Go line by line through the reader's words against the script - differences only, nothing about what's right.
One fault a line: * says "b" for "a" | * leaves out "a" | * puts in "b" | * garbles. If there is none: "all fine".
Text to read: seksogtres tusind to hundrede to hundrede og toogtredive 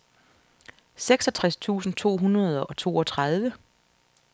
* leaves out "to hundrede"